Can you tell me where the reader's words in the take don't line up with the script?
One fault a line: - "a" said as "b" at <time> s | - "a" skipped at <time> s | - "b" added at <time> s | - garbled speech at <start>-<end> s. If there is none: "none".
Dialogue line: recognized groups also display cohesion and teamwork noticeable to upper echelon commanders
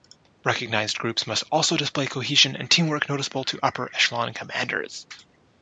- "must" added at 1.3 s